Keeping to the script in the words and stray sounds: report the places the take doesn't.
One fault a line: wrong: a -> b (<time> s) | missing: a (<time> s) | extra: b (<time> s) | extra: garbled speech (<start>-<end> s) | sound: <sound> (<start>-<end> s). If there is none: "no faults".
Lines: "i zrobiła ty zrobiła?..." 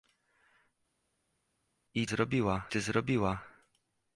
no faults